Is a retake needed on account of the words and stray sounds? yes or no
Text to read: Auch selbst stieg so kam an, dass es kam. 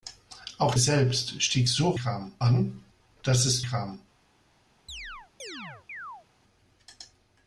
yes